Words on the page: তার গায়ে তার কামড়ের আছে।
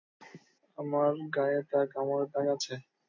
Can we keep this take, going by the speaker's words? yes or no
no